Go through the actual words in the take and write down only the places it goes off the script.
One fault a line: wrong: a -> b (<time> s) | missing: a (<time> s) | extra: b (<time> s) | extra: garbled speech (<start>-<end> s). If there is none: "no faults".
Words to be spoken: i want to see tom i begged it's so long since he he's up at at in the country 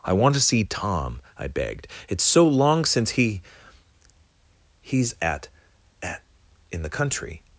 missing: up (5.1 s)